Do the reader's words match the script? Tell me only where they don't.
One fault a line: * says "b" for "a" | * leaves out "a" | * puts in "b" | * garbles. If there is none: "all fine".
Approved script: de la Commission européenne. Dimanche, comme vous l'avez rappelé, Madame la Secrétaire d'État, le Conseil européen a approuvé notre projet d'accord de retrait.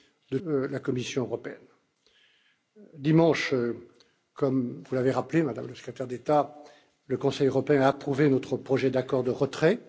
all fine